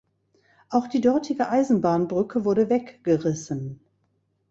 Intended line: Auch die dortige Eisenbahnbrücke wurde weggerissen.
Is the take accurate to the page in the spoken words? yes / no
yes